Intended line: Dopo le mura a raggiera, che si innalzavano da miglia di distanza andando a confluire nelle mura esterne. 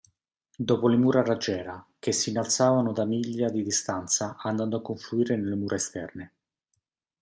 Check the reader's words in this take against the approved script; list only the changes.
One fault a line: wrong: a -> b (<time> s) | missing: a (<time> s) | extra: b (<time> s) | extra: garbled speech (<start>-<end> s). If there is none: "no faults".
no faults